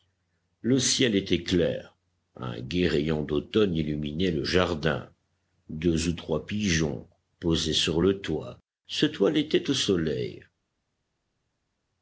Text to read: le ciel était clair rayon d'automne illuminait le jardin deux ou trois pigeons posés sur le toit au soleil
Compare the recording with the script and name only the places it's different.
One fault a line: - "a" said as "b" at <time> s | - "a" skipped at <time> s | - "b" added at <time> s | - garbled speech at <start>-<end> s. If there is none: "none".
- "un gai" added at 2.4 s
- "se toilettaient" added at 8.9 s